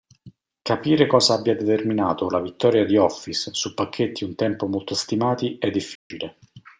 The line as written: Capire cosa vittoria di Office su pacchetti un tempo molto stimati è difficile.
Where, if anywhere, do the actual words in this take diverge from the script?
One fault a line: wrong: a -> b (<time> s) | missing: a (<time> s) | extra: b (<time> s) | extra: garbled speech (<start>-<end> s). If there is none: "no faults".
extra: abbia determinato la (1.4 s)